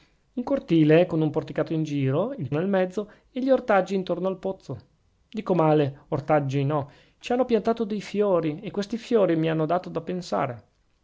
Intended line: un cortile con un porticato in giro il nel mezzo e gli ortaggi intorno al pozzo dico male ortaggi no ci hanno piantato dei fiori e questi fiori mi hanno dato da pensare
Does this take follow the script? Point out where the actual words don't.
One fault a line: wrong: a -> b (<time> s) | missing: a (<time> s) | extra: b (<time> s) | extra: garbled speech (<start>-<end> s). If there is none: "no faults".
no faults